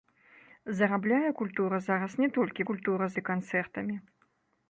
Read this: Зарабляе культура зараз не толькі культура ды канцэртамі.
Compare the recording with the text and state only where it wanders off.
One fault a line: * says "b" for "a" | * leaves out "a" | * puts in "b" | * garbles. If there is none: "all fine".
all fine